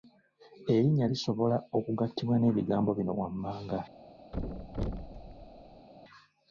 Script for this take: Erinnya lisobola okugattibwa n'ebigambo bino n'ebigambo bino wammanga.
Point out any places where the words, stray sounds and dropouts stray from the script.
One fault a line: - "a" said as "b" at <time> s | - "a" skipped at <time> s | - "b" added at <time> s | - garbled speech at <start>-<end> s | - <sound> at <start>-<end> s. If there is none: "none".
- "n'ebigambo bino" skipped at 3.1 s
- thud at 4.3-5.9 s